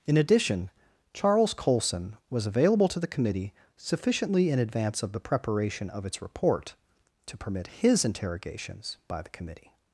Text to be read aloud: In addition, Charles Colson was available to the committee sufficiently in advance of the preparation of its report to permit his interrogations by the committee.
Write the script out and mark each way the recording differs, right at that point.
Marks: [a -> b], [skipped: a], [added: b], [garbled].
In addition, Charles Colson was available to the committee sufficiently in advance of the preparation of its report to permit his interrogations by the committee.